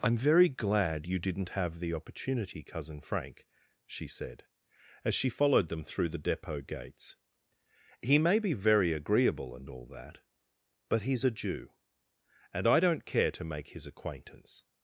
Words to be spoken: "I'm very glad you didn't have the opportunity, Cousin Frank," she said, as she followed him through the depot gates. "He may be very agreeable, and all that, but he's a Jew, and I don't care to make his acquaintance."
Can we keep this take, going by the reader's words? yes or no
no